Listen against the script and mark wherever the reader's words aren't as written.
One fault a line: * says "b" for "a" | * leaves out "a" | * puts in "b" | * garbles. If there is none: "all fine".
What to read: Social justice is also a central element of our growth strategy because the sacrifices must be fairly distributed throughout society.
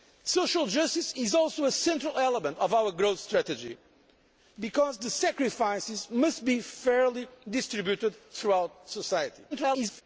* garbles